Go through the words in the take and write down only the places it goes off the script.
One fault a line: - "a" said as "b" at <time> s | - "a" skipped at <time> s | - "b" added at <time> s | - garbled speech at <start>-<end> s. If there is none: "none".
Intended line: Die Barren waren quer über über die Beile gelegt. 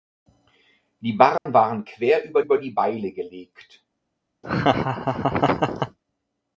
none